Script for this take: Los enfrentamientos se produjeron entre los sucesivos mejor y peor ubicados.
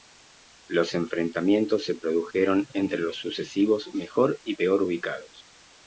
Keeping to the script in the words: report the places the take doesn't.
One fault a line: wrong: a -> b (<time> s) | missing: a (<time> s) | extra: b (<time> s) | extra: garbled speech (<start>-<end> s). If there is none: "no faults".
no faults